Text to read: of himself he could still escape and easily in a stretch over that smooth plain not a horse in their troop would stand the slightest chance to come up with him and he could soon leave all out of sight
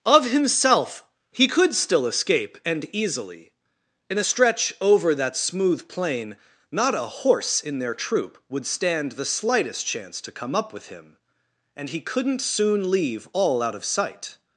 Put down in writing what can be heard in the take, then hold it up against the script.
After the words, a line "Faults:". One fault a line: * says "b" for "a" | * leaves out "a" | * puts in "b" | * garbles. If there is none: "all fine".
of himself he could still escape and easily in a stretch over that smooth plain not a horse in their troop would stand the slightest chance to come up with him and he couldn't soon leave all out of sight
Faults:
* says "couldn't" for "could"